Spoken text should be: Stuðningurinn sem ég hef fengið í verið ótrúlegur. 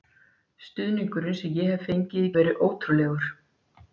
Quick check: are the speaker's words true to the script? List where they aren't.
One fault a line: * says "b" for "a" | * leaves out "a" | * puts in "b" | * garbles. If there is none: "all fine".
all fine